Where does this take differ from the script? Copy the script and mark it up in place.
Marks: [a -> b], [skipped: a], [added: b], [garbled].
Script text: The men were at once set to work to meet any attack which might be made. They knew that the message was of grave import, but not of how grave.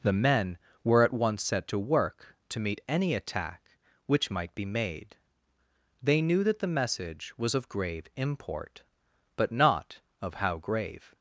The men were at once set to work to meet any attack which might be made. They knew that the message was of grave import, but not of how grave.